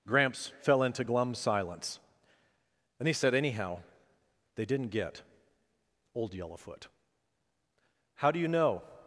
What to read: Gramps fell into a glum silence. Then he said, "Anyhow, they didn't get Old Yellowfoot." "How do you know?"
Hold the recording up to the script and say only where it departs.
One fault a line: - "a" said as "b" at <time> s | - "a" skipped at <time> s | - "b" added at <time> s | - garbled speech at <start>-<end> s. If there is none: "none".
- "a" skipped at 1.0 s